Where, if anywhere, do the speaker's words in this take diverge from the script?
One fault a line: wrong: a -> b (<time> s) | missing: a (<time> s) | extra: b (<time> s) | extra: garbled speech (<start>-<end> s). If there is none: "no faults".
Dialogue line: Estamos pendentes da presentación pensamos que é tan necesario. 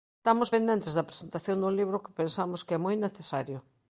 extra: dun libro que (1.6 s)
wrong: tan -> moi (2.8 s)